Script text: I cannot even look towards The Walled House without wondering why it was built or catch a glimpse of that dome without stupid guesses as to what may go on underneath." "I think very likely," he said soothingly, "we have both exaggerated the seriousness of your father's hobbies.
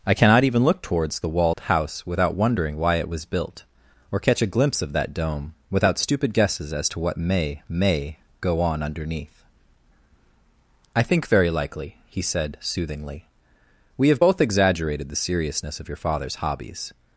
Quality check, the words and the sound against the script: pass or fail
fail